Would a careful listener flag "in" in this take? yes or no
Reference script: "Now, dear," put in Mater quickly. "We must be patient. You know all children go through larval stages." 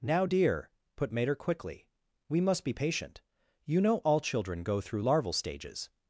yes